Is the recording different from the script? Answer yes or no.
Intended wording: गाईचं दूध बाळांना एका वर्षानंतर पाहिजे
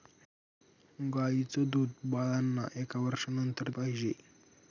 no